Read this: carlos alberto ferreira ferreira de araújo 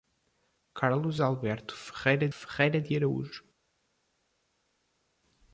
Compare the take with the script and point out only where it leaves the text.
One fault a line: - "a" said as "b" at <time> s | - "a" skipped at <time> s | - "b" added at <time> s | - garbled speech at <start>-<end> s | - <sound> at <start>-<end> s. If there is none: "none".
none